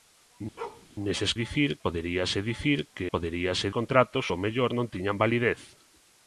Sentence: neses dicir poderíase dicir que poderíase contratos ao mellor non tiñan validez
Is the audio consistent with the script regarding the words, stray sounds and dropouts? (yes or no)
no